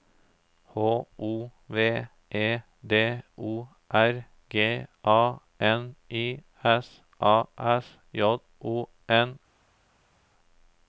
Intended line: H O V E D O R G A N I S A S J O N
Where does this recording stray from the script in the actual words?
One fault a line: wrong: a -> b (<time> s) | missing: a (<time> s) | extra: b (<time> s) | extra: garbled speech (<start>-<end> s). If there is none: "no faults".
no faults